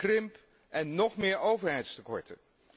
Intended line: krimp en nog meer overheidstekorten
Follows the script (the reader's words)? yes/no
yes